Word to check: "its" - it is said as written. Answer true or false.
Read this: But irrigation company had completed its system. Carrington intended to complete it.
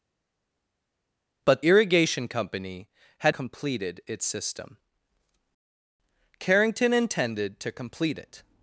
true